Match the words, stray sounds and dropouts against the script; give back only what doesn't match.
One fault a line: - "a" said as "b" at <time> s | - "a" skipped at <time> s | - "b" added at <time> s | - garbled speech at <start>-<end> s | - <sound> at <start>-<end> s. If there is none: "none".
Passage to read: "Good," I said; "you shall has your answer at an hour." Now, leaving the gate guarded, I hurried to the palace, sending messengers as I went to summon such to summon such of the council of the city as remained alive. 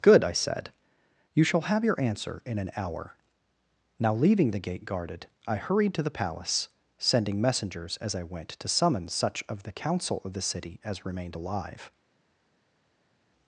- "has" said as "have" at 1.7 s
- "at" said as "in" at 2.4 s
- "to summon such" skipped at 9.4 s